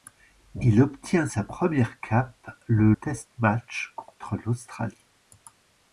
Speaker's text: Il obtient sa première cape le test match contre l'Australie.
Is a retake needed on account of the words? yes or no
no